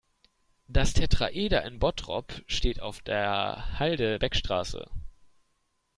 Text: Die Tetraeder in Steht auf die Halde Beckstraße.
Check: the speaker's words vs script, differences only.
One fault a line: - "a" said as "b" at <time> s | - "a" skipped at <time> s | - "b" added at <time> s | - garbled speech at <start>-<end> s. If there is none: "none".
- "Die" said as "Das" at 0.7 s
- "Bottrop" added at 1.8 s
- "die" said as "der" at 3.0 s